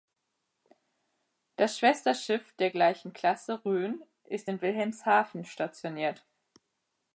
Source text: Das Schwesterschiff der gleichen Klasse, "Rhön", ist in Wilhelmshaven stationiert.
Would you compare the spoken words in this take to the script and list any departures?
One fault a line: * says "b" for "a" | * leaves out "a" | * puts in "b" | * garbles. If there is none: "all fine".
all fine